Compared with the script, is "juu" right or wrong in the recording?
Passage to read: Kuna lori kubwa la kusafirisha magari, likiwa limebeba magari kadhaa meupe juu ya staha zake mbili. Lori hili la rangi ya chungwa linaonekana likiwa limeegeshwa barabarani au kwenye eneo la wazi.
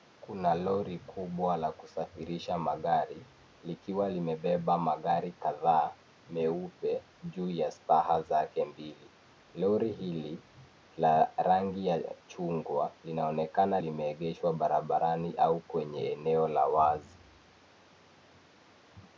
right